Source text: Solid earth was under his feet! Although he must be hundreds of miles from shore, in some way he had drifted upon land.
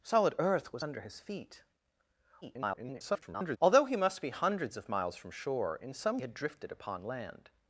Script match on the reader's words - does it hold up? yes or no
no